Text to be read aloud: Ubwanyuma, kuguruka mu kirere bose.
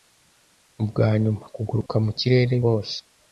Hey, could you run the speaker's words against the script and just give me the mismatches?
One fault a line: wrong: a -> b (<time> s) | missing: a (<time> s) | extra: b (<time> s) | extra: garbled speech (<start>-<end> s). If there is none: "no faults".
no faults